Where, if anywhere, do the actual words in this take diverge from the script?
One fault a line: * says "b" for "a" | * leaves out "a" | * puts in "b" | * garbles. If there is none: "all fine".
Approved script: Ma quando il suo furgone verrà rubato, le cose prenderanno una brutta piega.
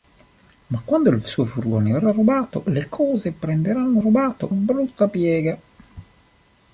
* says "rubato" for "una"